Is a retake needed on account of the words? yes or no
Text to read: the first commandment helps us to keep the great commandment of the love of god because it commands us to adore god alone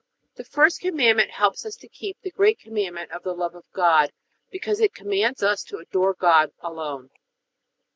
no